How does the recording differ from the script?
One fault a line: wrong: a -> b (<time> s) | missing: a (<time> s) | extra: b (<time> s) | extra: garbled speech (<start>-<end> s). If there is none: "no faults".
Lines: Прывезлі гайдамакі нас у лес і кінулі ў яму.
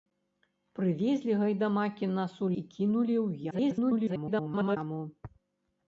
missing: лес (2.5 s)
extra: garbled speech (3.5-4.8 s)